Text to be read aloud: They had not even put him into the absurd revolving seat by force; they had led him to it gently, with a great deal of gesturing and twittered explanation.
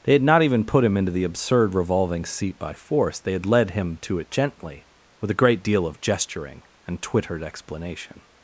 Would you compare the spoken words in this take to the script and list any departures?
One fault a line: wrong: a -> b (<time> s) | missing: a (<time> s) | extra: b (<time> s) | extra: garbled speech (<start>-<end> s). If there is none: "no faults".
no faults